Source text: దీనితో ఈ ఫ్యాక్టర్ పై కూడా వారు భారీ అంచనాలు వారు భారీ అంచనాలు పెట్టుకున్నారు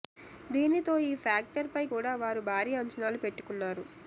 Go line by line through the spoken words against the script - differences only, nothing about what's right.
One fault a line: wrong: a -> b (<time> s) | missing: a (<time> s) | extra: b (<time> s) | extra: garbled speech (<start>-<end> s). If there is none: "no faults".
missing: వారు భారీ అంచనాలు (3.2 s)